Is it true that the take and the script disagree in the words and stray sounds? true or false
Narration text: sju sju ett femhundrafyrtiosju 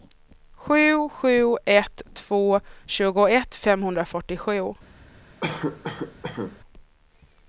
true